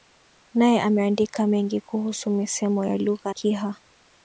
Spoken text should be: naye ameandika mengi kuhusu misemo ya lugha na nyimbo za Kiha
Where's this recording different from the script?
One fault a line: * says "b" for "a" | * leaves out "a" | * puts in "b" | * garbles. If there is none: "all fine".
* leaves out "na nyimbo za"